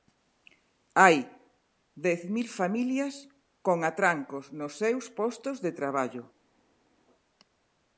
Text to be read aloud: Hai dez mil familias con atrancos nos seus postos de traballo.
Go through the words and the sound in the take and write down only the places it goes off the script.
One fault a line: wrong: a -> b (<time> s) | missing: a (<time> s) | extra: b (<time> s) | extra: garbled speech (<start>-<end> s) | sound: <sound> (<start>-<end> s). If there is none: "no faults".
no faults